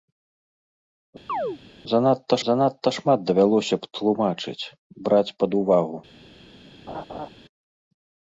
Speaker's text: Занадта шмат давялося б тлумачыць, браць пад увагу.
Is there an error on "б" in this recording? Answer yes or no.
no